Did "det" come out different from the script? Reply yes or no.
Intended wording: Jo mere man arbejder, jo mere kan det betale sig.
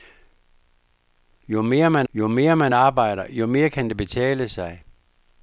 no